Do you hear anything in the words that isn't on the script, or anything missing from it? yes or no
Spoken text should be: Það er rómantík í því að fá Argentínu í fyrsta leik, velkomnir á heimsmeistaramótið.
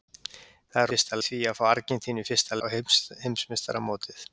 yes